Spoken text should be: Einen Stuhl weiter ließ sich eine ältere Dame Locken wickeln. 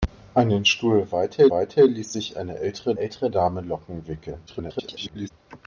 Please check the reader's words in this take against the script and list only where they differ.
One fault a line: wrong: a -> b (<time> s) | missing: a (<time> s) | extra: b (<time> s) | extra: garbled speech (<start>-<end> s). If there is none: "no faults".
extra: weiter (1.5 s)
extra: ältere (3.0 s)
extra: garbled speech (4.5-5.3 s)